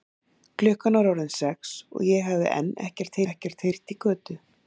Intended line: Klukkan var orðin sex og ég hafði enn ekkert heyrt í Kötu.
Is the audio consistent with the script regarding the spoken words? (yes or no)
no